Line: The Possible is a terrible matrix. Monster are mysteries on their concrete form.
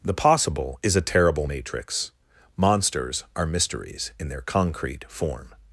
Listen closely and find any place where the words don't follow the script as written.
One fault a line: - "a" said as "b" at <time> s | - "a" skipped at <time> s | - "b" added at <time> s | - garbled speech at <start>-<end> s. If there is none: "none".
- "Monster" said as "Monsters" at 2.6 s
- "on" said as "in" at 4.2 s